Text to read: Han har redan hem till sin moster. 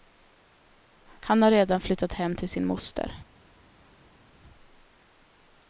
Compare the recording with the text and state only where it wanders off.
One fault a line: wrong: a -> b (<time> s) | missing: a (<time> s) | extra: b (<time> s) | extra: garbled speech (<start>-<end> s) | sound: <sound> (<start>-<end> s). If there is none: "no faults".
extra: flyttat (1.8 s)